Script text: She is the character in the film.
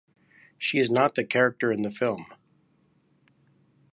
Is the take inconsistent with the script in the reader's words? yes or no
yes